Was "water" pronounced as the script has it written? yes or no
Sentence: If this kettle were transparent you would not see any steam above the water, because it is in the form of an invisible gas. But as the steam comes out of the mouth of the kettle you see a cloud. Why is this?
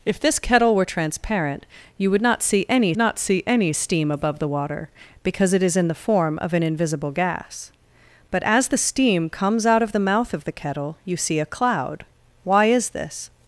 yes